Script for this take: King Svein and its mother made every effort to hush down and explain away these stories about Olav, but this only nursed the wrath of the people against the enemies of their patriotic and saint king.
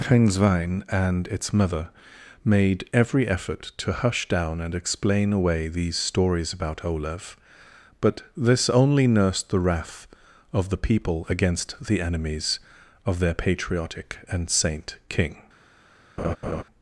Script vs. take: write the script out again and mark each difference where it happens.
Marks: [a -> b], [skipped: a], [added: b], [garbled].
King Svein and its mother made every effort to hush down and explain away these stories about Olav, but this only nursed the wrath of the people against the enemies of their patriotic and saint king.